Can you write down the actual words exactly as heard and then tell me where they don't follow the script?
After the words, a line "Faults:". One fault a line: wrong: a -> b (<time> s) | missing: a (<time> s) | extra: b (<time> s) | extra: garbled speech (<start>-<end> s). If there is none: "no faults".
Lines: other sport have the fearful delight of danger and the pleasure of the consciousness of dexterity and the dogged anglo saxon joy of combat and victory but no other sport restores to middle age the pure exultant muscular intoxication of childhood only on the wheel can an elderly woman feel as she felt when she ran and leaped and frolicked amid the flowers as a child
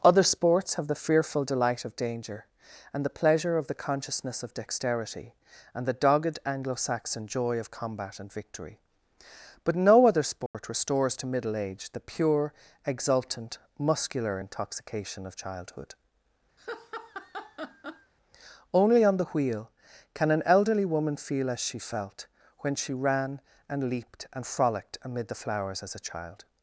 other sports have the fearful delight of danger and the pleasure of the consciousness of dexterity and the dogged anglo saxon joy of combat and victory but no other sport restores to middle age the pure exultant muscular intoxication of childhood only on the wheel can an elderly woman feel as she felt when she ran and leaped and frolicked amid the flowers as a child
Faults:
wrong: sport -> sports (0.2 s)